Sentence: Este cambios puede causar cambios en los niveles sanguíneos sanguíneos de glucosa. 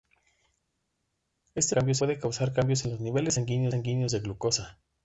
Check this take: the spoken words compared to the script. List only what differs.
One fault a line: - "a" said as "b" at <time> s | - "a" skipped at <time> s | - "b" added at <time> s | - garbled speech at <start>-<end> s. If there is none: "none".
none